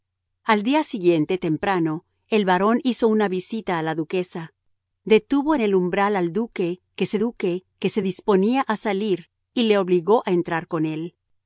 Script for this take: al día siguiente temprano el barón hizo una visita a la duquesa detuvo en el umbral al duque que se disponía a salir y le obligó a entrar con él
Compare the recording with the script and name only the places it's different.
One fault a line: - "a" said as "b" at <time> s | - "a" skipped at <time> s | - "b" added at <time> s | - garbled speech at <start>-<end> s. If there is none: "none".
- "duque que se" added at 7.2 s